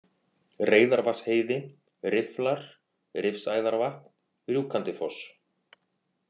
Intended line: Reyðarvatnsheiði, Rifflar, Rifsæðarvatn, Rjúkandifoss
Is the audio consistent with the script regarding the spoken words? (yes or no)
yes